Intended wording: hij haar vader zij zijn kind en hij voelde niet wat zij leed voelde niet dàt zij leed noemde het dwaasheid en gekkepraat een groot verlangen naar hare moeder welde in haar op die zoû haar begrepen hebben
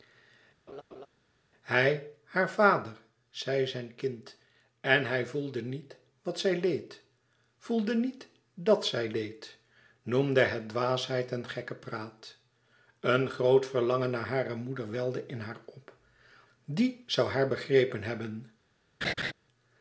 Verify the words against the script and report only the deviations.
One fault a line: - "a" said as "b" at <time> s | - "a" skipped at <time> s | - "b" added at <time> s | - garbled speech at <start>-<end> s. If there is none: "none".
none